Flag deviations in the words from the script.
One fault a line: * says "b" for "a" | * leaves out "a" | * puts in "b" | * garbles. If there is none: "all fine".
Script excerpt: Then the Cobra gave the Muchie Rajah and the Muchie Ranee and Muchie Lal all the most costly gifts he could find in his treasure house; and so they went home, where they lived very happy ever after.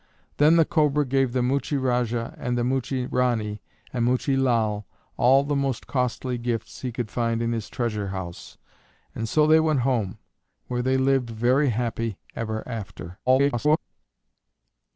* garbles